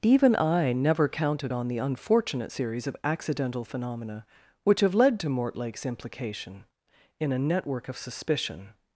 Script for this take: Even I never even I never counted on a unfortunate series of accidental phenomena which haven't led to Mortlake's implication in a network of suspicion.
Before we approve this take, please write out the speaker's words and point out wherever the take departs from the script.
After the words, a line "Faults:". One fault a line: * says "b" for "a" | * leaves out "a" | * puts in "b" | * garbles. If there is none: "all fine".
Even I never counted on the unfortunate series of accidental phenomena which have led to Mortlake's implication in a network of suspicion.
Faults:
* leaves out "even I never"
* says "the" for "a"
* says "have" for "haven't"